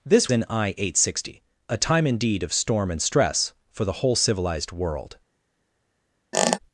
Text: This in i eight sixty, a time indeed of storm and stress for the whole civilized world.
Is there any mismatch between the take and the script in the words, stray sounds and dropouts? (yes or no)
yes